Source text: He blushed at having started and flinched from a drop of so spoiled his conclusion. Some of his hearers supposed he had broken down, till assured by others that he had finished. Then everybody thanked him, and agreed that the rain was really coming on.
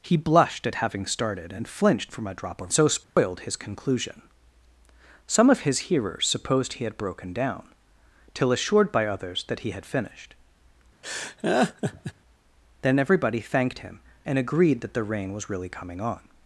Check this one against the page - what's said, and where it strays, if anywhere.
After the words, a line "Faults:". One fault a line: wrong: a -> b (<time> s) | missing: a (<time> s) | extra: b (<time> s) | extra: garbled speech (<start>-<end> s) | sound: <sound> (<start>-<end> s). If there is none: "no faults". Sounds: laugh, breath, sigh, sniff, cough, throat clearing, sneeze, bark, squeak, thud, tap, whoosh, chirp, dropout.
He blushed at having started and flinched from a drop of so spoiled his conclusion. Some of his hearers supposed he had broken down, till assured by others that he had finished. Then everybody thanked him, and agreed that the rain was really coming on.
Faults:
sound: dropout (3.0-3.2 s)
sound: laugh (11.0-12.1 s)